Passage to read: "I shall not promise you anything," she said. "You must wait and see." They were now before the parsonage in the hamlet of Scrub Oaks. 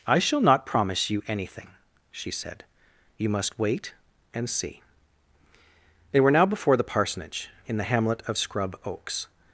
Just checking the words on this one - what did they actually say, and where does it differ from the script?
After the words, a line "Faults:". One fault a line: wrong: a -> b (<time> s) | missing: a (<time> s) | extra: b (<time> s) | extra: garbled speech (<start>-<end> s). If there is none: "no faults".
"I shall not promise you anything," she said. "You must wait and see." They were now before the parsonage in the hamlet of Scrub Oaks.
Faults:
no faults